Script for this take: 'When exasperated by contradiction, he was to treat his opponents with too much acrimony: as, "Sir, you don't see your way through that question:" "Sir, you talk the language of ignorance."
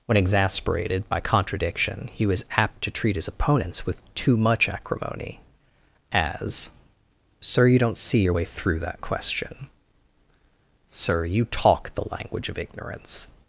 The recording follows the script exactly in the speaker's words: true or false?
false